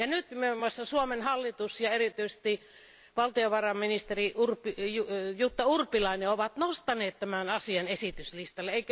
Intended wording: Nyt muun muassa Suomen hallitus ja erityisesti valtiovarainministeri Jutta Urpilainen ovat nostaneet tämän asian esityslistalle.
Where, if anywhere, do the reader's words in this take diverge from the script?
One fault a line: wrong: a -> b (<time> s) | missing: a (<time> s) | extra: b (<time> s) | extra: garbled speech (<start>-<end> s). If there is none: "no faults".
no faults